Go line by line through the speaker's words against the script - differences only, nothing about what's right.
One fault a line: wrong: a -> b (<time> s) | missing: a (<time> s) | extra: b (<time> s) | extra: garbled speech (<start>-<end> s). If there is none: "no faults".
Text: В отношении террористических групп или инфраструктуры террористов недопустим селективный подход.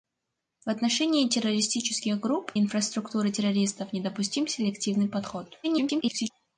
missing: или (2.5 s)
extra: garbled speech (5.6-6.3 s)